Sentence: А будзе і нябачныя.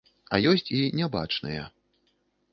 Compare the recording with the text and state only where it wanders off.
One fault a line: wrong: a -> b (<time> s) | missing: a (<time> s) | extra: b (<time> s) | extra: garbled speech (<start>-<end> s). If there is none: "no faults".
wrong: будзе -> ёсць (0.5 s)